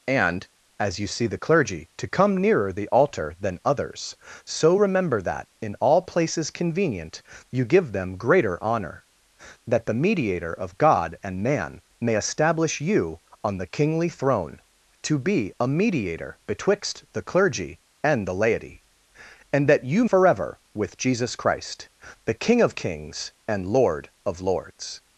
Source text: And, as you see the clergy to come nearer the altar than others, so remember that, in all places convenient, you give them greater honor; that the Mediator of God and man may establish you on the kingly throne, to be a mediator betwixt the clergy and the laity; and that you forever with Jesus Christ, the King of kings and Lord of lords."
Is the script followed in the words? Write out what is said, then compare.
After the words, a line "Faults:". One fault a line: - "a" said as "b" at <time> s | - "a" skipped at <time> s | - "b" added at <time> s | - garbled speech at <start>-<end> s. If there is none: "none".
And, as you see the clergy to come nearer the altar than others, so remember that, in all places convenient, you give them greater honor; that the Mediator of God and man may establish you on the kingly throne, to be a mediator betwixt the clergy and the laity; and that you forever with Jesus Christ, the King of kings and Lord of lords."
Faults:
none